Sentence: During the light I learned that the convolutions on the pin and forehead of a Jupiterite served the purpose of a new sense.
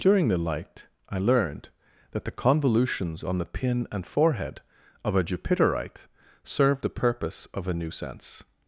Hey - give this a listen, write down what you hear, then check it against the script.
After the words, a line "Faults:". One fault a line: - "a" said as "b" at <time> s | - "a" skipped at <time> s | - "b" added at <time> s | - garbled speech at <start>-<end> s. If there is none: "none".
During the light I learned that the convolutions on the pin and forehead of a Jupiterite served the purpose of a new sense.
Faults:
none